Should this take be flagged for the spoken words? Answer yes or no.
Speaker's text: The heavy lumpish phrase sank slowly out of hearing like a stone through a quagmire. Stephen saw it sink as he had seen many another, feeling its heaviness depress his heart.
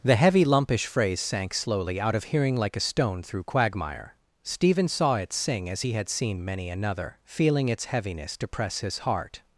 yes